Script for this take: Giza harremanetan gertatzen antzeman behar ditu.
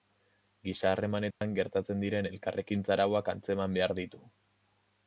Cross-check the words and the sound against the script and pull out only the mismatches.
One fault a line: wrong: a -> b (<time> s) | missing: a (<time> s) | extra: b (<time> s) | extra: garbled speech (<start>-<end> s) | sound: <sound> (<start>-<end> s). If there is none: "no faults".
sound: dropout (1.3-1.4 s)
extra: diren elkarrekintza arauak (2.0 s)